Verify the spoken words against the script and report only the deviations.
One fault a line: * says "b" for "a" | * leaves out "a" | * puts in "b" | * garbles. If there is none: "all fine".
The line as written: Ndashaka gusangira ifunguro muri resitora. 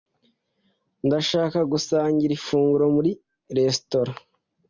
all fine